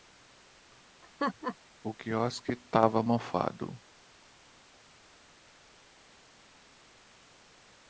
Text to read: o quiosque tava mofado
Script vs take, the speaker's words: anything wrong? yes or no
no